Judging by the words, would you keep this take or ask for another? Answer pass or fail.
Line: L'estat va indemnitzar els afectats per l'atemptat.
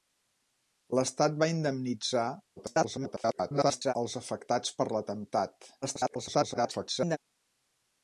fail